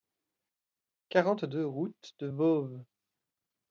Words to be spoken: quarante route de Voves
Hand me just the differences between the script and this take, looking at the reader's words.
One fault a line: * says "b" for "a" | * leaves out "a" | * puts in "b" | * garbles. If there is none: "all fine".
* puts in "deux"